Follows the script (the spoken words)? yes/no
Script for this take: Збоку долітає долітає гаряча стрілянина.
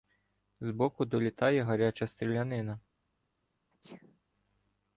no